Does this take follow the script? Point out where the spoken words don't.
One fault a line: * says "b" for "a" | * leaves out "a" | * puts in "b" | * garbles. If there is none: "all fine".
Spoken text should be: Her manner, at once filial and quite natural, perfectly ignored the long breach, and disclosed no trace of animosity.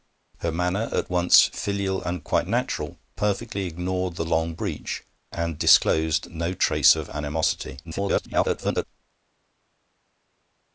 * garbles